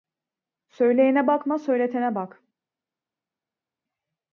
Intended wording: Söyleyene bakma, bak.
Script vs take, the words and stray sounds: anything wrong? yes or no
yes